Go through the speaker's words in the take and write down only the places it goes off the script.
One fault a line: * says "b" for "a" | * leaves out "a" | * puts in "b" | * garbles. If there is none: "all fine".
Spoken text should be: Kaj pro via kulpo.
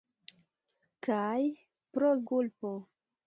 * leaves out "via"